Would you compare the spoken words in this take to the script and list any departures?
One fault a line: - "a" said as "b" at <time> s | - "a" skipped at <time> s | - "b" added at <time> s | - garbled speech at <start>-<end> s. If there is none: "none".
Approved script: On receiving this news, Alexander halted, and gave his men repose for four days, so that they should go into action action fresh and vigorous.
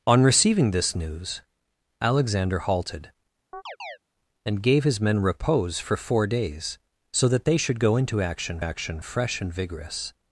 none